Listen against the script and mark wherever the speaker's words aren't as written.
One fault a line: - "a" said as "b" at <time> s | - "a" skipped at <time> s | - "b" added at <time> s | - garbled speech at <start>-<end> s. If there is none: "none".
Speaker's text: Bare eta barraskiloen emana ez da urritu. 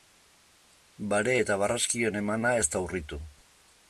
none